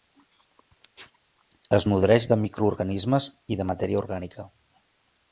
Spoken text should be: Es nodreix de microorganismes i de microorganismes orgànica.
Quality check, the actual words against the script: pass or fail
fail